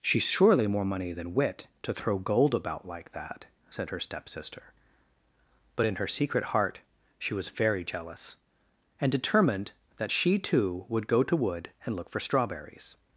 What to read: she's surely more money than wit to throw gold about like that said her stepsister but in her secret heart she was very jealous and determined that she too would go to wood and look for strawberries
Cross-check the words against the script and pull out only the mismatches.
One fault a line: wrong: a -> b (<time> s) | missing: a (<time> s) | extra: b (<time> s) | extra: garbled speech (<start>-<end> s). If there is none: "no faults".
no faults